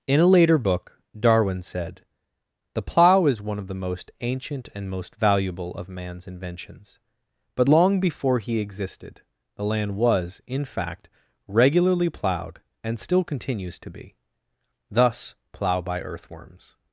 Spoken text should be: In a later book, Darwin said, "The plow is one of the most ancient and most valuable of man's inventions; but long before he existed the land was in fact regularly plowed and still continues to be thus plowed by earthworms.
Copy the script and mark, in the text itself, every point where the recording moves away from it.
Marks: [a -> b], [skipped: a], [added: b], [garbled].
In a later book, Darwin said, "The plow is one of the most ancient and most valuable of man's inventions; but long before he existed the land was in fact regularly plowed and still continues to be thus [plowed -> plow] by earthworms.